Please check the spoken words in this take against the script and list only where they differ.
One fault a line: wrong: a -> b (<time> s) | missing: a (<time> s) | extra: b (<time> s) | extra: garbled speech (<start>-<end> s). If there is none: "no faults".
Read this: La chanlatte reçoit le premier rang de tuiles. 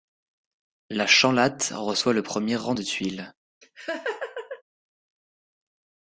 no faults